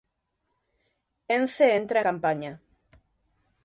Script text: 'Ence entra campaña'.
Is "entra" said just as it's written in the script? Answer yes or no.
yes